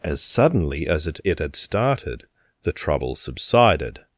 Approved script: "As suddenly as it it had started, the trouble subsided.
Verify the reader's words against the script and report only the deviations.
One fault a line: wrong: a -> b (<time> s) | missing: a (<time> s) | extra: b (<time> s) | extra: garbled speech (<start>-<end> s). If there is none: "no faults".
no faults